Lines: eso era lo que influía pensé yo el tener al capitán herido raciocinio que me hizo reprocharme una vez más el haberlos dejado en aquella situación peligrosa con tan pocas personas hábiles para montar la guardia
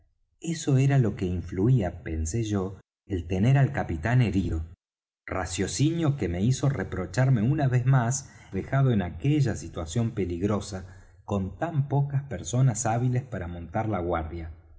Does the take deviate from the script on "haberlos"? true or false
true